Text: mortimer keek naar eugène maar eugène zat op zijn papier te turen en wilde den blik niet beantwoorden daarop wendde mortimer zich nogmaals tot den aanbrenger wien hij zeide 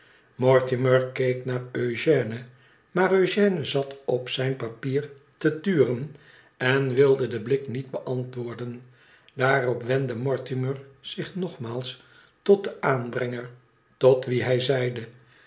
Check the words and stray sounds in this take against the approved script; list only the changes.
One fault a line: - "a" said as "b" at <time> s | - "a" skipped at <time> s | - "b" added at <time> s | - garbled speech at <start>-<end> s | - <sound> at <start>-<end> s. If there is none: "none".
- "tot" added at 14.0 s